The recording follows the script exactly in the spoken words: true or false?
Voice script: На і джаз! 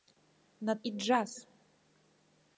true